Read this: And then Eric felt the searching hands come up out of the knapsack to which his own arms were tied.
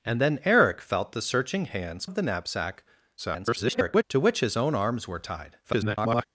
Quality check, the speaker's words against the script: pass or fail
fail